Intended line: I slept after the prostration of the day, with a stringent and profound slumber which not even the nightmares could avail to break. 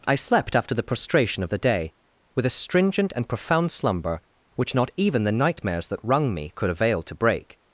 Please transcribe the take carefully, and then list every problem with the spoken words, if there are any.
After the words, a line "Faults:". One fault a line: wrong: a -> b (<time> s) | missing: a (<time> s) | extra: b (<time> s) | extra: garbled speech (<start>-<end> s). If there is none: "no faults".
I slept after the prostration of the day, with a stringent and profound slumber which not even the nightmares that wrung me could avail to break.
Faults:
extra: that wrung me (5.9 s)